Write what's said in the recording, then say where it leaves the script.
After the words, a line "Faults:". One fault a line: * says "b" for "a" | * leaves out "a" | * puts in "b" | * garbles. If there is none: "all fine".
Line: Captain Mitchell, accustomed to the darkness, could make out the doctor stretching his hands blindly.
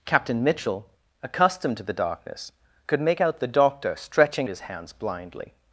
Captain Mitchell, accustomed to the darkness, could make out the doctor stretching his hands blindly.
Faults:
all fine